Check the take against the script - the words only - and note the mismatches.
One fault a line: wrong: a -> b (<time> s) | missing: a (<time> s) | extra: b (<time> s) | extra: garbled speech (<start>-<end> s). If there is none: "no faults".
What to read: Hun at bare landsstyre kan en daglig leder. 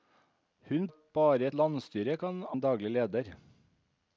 no faults